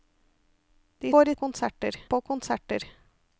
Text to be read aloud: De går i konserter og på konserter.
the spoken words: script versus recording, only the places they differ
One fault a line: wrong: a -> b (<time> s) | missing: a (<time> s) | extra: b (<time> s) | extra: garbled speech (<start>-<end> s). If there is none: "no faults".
no faults